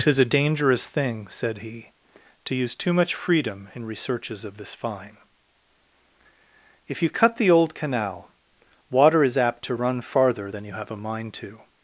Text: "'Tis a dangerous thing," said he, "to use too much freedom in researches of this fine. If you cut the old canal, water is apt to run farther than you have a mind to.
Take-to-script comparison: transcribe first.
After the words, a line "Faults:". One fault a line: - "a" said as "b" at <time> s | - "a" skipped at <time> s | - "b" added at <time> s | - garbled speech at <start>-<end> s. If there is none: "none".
"'Tis a dangerous thing," said he, "to use too much freedom in researches of this fine. If you cut the old canal, water is apt to run farther than you have a mind to.
Faults:
none